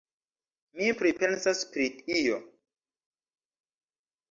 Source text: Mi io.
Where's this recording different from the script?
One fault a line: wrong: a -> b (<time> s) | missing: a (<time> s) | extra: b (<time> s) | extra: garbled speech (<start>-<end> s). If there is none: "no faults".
extra: pripensas pri (1.0 s)